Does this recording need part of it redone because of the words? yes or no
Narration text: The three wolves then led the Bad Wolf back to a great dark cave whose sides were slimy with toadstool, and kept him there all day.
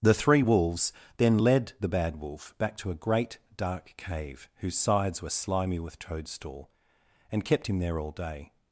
no